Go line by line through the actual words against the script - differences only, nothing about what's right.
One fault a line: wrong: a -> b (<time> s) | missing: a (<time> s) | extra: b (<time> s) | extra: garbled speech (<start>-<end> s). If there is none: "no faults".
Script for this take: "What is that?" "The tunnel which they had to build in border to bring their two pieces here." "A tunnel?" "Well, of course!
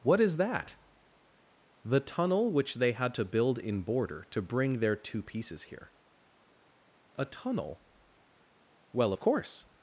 no faults